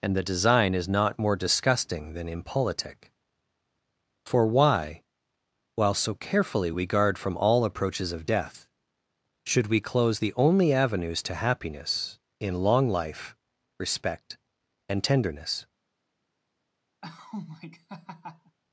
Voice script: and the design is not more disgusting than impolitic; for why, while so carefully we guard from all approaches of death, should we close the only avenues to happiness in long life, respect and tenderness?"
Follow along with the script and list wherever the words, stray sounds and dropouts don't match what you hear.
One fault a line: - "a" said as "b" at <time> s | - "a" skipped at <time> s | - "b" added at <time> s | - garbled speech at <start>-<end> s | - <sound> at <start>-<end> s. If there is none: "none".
- laugh at 17.0-18.6 s